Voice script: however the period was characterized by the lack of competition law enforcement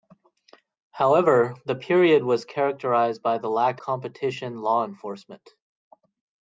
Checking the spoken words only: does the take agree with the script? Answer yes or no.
no